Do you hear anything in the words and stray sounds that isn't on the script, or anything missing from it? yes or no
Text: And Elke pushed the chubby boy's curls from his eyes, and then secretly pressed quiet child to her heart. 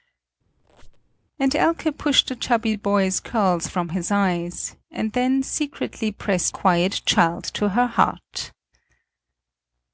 yes